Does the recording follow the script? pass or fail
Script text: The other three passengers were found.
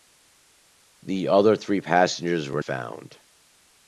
pass